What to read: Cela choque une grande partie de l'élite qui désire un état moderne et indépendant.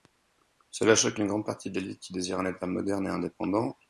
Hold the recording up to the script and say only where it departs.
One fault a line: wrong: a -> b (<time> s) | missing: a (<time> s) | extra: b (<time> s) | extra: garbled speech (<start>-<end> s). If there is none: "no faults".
no faults